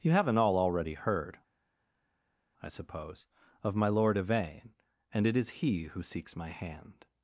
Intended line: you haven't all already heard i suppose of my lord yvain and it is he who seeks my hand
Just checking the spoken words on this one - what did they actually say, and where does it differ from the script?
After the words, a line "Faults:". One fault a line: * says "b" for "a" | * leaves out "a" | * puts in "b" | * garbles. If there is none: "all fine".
you haven't all already heard i suppose of my lord yvain and it is he who seeks my hand
Faults:
all fine